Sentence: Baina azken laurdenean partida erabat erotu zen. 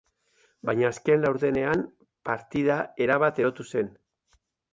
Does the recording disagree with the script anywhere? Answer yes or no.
no